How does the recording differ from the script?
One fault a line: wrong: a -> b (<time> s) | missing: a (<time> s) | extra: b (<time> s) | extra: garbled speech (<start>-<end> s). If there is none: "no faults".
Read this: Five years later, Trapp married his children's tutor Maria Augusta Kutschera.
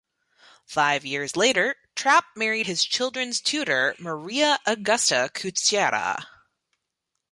no faults